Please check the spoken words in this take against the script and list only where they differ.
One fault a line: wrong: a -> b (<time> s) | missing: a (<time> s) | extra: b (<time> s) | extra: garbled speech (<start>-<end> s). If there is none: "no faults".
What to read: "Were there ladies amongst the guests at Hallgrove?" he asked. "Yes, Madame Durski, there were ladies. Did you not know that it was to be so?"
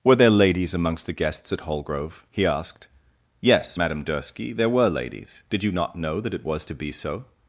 no faults